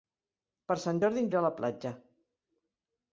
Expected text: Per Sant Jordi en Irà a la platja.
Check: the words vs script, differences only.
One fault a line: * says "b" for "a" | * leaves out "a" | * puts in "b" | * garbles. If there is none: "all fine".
all fine